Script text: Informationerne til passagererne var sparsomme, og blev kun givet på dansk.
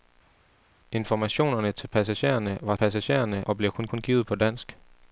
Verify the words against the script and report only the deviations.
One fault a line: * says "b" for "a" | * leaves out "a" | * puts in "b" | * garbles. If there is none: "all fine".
* says "passagererne" for "sparsomme"
* puts in "kun"